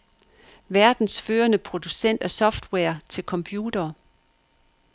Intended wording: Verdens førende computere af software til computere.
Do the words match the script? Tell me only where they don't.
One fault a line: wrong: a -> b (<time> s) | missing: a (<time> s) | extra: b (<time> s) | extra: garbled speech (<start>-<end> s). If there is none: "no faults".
wrong: computere -> producent (1.6 s)